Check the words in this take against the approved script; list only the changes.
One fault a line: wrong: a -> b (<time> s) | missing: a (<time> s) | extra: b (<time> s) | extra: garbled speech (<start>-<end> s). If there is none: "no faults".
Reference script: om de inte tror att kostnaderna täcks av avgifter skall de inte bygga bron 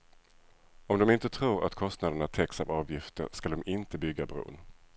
no faults